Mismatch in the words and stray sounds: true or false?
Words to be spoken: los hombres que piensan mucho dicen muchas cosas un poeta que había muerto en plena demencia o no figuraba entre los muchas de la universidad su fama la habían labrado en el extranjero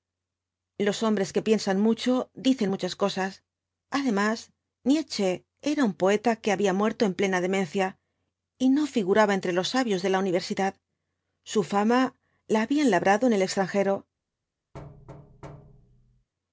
true